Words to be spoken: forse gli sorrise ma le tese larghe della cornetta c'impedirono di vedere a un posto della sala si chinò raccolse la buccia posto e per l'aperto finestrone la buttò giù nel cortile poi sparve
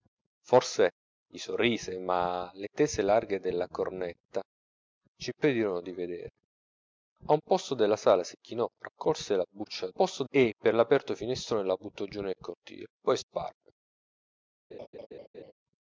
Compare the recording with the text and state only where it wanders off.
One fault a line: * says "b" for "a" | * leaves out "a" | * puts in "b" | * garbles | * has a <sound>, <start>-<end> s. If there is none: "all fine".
* has a laugh, 14.7-15.5 s